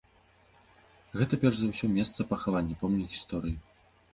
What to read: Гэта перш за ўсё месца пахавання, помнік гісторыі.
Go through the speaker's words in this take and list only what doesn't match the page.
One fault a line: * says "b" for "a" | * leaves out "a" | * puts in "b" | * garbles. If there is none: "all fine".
all fine